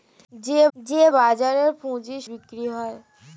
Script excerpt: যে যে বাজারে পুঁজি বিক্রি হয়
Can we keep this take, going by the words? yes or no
yes